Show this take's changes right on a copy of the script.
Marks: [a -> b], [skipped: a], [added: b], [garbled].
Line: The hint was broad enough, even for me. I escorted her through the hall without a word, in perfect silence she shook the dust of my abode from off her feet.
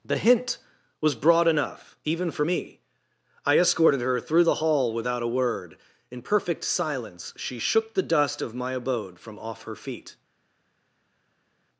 The hint was broad enough, even for me. I escorted her through the hall without a word, in perfect silence she shook the dust of my abode from off her feet.